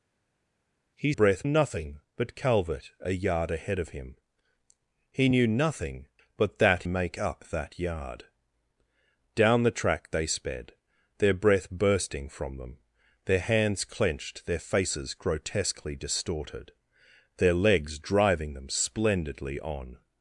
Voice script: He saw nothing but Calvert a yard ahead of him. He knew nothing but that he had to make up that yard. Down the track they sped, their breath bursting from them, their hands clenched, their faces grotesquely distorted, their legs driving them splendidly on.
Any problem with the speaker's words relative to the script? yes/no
yes